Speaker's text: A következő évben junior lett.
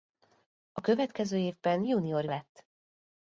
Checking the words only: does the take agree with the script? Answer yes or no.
yes